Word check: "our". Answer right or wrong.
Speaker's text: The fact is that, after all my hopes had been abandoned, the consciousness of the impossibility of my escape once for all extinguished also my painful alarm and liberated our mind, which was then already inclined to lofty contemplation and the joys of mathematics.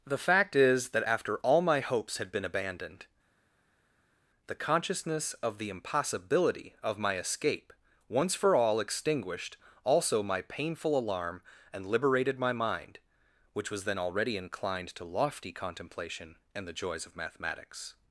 wrong